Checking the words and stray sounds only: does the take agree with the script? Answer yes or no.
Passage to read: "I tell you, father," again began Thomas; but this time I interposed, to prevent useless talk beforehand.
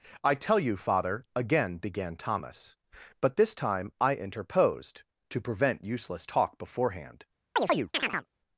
no